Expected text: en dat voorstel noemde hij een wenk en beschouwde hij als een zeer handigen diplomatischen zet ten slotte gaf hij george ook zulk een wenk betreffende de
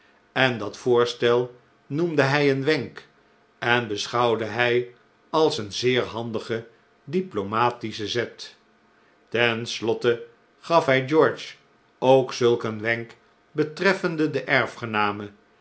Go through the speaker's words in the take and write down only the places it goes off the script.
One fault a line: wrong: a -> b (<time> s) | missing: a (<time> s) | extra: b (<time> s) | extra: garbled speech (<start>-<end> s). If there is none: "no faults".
no faults